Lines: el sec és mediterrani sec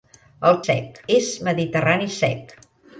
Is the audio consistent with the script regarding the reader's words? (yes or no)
yes